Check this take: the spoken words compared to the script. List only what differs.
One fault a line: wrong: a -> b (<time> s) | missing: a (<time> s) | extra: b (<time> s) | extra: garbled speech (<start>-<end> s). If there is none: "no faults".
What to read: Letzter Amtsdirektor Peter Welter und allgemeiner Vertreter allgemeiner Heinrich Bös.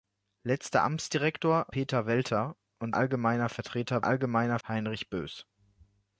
no faults